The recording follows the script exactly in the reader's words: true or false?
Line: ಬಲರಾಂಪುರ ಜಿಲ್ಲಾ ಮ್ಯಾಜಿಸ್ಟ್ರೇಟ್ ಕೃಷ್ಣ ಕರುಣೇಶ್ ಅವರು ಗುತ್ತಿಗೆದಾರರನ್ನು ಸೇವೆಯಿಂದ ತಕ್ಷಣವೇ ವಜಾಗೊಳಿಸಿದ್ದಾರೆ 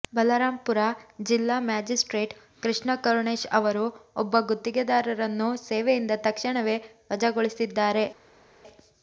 false